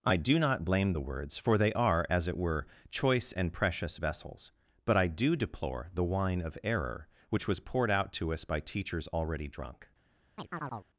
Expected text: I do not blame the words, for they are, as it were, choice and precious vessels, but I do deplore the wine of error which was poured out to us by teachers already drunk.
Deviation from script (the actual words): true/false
false